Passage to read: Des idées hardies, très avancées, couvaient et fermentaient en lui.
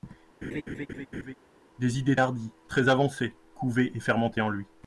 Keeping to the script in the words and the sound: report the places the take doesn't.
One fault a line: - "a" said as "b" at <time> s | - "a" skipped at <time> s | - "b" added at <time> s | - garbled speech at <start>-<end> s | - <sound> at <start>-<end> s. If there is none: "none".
- laugh at 0.4-1.3 s